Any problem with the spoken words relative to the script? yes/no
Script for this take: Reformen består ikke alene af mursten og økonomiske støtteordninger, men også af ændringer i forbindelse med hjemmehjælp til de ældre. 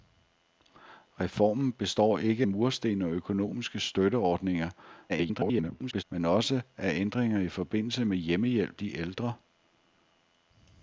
yes